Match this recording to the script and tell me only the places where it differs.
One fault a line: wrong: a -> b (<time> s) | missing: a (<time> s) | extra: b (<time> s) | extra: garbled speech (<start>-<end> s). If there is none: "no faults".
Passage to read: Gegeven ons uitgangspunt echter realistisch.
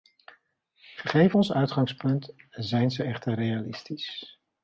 extra: zijn ze (2.5 s)